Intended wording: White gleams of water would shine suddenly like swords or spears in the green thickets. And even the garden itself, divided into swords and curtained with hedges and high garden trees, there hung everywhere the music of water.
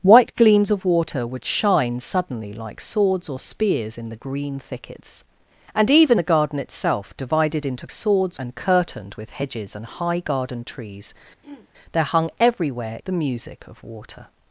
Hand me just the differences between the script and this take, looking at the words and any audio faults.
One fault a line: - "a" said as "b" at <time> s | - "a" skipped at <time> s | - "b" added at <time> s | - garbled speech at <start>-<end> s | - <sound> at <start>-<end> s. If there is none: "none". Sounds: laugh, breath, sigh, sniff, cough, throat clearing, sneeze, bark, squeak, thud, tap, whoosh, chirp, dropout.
- throat clearing at 11.4-11.7 s